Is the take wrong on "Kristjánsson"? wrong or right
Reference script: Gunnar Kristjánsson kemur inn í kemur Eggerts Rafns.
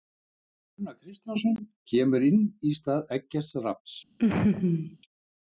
right